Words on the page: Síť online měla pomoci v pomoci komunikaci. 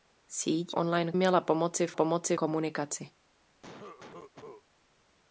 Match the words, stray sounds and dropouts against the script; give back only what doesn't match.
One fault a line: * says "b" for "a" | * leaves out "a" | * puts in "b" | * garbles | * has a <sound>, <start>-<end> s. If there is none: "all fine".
* has a cough, 3.6-4.6 s